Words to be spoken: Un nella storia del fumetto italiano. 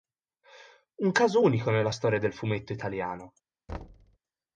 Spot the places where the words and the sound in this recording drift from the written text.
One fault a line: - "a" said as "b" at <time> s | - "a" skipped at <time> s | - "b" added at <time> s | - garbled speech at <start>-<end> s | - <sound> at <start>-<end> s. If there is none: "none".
- "caso unico" added at 1.1 s
- thud at 3.7-4.2 s